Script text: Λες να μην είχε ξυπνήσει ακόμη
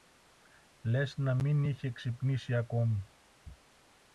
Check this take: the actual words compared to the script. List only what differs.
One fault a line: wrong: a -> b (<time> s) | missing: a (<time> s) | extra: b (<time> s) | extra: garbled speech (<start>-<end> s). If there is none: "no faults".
no faults